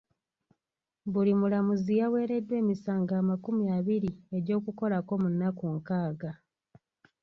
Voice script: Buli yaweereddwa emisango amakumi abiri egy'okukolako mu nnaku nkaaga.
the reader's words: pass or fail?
fail